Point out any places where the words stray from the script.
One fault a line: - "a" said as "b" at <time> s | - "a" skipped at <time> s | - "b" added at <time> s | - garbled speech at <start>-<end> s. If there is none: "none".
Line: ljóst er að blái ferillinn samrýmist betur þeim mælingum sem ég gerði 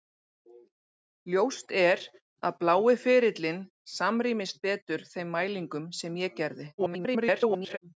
- garbled speech at 6.8-7.8 s